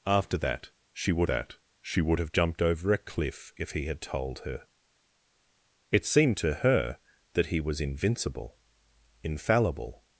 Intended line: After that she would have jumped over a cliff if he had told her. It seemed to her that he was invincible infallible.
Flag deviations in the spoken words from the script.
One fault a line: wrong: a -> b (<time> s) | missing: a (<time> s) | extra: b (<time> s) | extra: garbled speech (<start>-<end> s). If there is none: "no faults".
extra: that she would (1.2 s)